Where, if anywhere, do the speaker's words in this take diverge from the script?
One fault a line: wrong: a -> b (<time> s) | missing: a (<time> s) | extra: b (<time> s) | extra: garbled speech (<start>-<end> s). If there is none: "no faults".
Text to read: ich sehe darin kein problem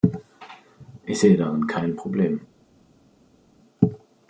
no faults